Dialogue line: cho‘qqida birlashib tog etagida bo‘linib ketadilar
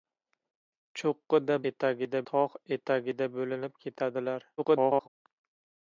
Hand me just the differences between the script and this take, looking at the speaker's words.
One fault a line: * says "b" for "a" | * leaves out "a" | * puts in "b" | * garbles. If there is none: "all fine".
* says "etagida" for "birlashib"
* garbles